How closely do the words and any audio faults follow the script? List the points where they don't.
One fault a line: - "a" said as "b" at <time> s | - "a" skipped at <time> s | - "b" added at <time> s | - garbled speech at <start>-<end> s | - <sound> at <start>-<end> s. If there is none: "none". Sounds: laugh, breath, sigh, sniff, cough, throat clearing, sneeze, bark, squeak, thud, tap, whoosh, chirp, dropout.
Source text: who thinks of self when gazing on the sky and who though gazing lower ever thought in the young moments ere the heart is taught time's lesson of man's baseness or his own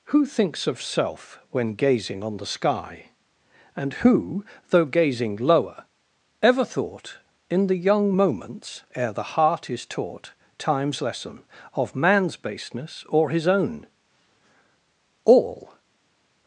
- "all" added at 15.2 s